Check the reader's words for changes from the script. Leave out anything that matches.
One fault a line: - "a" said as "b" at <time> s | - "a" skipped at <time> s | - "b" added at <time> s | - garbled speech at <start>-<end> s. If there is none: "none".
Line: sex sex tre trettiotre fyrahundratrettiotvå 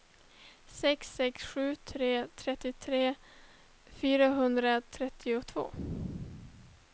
- "sju" added at 1.4 s